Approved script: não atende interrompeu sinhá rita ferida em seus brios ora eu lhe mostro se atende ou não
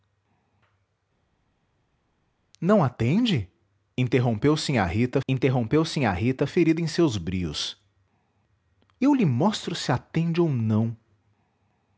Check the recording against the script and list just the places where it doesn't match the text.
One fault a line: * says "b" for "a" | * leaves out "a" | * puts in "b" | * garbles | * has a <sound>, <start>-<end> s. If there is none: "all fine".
* puts in "interrompeu sinhá rita"
* leaves out "ora"